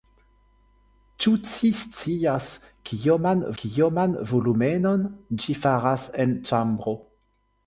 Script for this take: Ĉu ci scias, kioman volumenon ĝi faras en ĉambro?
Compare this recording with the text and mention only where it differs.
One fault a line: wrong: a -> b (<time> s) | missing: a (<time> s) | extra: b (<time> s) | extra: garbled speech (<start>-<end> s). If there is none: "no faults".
extra: kioman (3.6 s)